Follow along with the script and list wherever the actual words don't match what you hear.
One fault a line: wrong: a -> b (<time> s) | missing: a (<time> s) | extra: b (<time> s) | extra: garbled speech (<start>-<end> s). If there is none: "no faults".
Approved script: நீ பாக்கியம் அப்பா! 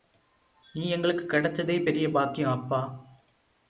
extra: எங்களுக்குக் கிடைச்சதே பெரிய (0.9 s)